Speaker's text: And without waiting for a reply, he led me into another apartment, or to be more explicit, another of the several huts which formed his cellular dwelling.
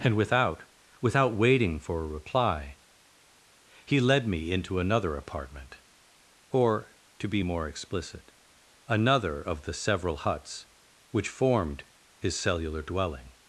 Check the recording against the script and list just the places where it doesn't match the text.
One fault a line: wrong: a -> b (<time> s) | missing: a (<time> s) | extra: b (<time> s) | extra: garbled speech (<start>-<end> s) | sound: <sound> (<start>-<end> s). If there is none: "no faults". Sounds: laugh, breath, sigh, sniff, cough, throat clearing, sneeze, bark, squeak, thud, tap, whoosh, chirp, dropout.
extra: without (1.0 s)